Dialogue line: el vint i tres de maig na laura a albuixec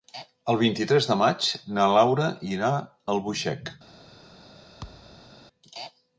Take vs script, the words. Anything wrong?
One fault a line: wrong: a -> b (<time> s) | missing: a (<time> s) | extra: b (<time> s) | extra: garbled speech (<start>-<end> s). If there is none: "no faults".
extra: irà (2.5 s)